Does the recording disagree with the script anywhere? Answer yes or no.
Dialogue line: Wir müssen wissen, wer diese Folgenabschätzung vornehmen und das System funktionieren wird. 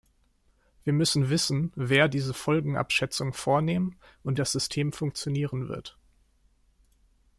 no